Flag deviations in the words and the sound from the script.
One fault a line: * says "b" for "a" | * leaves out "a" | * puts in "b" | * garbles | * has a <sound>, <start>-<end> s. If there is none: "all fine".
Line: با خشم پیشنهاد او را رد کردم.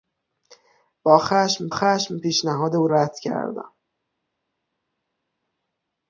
* puts in "خشم"
* leaves out "را"